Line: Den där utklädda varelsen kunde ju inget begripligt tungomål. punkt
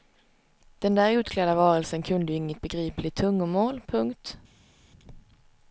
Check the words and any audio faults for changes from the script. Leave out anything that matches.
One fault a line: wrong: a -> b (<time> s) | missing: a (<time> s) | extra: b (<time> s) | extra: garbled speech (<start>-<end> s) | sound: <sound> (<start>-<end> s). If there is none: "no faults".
no faults